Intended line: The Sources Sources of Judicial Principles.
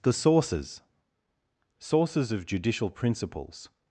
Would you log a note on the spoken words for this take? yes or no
no